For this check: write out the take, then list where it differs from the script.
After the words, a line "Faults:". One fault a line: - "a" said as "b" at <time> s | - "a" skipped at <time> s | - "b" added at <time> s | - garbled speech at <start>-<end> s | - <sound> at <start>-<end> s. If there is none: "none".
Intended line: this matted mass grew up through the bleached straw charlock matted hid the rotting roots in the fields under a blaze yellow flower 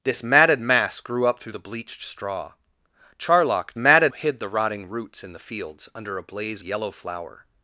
this matted mass grew up through the bleached straw charlock matted hid the rotting roots in the fields under a blaze yellow flower
Faults:
none